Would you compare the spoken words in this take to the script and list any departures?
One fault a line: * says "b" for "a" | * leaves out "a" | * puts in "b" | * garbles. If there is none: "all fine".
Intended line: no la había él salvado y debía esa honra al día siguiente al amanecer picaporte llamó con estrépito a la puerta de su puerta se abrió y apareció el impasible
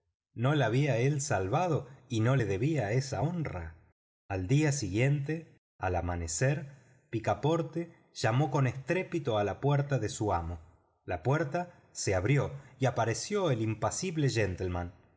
* puts in "no le"
* puts in "amo la"